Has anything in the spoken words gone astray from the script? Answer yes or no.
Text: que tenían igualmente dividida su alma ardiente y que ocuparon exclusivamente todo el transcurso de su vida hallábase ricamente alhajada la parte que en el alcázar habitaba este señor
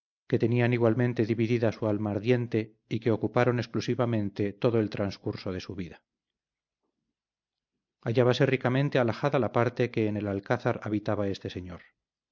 no